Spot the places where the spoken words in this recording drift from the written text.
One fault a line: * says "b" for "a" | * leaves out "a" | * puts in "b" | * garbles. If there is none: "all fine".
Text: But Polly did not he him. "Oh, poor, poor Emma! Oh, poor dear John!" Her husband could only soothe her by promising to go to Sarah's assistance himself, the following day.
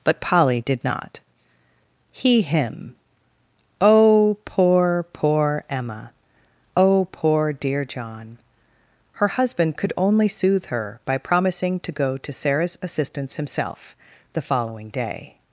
all fine